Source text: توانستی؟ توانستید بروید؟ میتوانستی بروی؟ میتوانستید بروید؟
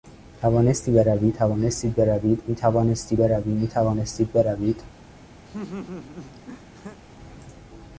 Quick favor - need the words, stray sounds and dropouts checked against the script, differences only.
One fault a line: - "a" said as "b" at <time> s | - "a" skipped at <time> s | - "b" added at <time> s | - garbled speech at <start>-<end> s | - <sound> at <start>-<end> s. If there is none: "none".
- "بروی" added at 0.9 s
- laugh at 5.4-7.0 s